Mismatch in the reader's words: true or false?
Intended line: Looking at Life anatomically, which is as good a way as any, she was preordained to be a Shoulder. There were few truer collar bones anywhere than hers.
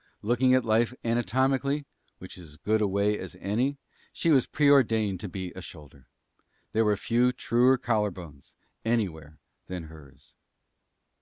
false